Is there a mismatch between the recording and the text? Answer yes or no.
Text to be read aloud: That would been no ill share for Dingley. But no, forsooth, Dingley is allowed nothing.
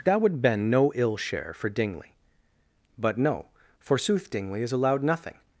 no